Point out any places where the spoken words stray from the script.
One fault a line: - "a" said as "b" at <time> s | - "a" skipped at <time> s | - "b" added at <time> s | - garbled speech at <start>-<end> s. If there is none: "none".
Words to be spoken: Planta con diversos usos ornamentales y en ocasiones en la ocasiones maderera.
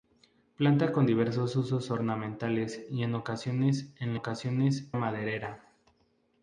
none